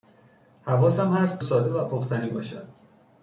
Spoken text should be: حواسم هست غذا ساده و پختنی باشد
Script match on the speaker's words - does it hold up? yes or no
no